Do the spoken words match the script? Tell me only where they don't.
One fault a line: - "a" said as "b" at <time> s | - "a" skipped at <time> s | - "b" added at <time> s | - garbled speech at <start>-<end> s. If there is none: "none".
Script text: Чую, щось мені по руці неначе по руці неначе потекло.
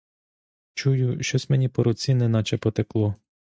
- "по руці неначе" skipped at 2.6 s